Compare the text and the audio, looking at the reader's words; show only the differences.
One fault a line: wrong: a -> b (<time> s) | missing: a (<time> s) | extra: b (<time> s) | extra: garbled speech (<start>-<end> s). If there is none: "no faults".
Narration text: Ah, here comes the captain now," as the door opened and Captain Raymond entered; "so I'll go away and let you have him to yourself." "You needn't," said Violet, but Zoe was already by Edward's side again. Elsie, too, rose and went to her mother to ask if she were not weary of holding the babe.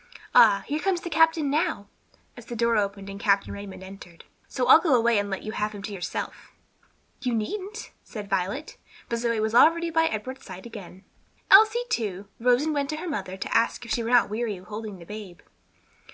no faults